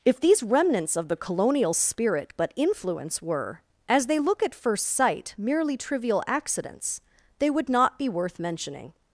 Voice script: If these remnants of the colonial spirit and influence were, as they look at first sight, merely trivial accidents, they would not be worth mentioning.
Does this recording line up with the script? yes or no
no